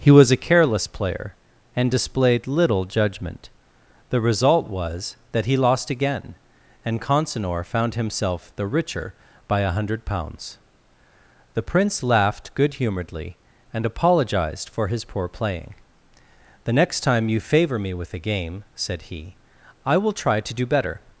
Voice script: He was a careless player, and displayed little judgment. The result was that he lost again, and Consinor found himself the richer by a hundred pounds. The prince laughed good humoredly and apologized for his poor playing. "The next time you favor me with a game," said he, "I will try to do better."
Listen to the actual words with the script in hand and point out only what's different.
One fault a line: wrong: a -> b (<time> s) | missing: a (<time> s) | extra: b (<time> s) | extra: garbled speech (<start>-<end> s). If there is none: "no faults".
no faults